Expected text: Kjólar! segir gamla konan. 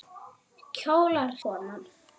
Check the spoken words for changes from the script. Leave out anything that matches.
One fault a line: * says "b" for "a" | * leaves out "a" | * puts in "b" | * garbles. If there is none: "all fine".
* leaves out "segir gamla"